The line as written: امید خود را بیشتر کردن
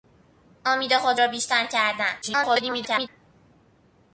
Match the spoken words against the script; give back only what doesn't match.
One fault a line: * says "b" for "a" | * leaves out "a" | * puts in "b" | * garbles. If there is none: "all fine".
* garbles